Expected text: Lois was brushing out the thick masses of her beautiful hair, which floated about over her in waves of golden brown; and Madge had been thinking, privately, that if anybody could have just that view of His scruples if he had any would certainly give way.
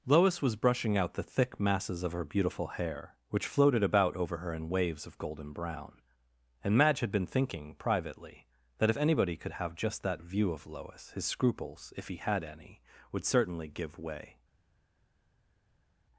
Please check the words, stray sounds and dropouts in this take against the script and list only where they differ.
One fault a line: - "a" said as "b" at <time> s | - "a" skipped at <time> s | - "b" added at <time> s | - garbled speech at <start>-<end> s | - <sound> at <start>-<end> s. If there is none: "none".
- "Lois" added at 10.6 s